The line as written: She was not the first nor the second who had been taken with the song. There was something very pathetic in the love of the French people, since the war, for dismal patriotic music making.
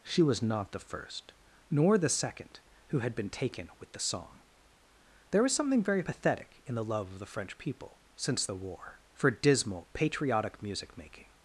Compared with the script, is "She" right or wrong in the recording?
right